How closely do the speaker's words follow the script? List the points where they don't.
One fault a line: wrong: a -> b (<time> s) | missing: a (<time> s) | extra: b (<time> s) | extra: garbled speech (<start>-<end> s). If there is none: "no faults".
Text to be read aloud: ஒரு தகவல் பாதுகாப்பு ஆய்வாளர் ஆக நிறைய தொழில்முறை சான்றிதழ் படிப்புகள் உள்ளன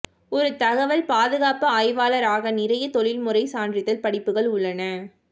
no faults